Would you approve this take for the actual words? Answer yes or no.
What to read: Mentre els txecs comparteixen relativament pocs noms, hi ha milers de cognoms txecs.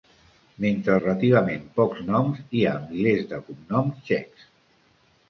no